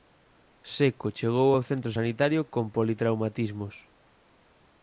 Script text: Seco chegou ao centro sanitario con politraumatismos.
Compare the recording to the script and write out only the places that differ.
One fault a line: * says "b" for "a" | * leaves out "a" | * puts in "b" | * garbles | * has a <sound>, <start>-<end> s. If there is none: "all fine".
all fine